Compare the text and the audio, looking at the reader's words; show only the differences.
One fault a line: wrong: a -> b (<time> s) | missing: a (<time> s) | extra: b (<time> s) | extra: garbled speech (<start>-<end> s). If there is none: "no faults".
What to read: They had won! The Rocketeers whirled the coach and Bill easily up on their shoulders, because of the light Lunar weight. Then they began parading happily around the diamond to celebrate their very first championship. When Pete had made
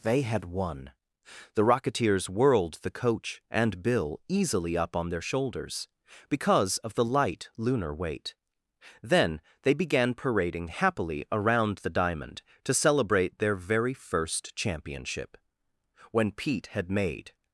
no faults